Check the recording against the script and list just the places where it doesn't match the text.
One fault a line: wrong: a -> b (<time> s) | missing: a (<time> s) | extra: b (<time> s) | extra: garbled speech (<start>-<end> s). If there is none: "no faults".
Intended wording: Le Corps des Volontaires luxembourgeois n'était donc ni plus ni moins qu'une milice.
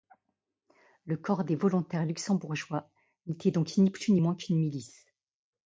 no faults